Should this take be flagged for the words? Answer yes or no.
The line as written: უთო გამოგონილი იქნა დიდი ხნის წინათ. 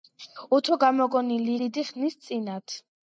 yes